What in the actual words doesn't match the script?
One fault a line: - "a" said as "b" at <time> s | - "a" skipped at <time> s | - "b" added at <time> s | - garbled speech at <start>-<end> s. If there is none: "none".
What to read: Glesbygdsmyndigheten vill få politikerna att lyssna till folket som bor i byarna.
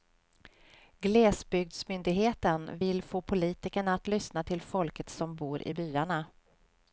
none